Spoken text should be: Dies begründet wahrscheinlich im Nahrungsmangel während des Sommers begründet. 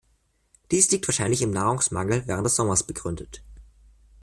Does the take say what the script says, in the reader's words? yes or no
no